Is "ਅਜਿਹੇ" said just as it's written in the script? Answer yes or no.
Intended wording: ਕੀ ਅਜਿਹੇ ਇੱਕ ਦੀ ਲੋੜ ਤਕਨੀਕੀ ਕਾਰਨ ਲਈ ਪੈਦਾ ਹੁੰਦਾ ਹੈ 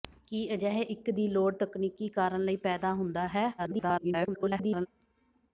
yes